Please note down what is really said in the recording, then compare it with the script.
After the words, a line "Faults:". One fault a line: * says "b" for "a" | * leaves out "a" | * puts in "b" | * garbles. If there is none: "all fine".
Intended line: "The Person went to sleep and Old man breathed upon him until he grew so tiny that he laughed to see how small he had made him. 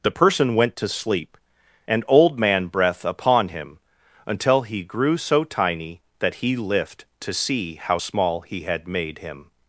"The Person went to sleep and Old man breath upon him until he grew so tiny that he lift to see how small he had made him.
Faults:
* says "breath" for "breathed"
* says "lift" for "laughed"